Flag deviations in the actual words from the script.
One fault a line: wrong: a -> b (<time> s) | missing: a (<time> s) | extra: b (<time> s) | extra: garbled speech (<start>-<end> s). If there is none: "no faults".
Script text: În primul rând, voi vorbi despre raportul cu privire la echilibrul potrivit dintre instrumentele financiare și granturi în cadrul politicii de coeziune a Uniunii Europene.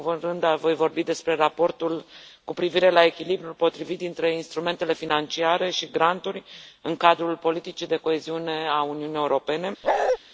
no faults